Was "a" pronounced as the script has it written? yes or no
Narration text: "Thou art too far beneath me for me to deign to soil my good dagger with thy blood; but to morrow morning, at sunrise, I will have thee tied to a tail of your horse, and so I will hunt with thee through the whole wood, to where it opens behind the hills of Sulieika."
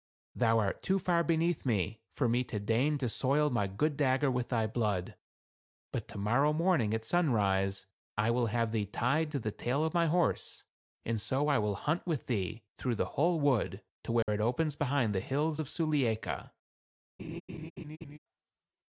no